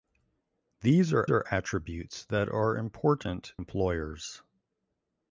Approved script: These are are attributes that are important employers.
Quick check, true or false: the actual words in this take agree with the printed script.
true